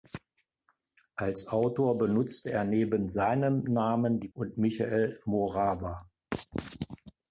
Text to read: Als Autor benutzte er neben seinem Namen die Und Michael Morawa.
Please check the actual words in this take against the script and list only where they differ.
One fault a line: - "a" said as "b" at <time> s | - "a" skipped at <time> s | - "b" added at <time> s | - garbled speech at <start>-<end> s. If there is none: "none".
none